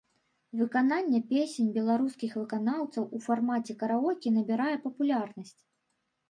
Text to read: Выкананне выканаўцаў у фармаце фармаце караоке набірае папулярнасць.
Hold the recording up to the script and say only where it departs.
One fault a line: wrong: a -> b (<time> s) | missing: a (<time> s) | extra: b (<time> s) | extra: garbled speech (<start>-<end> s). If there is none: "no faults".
extra: песень беларускіх (1.3 s)
missing: фармаце (3.8 s)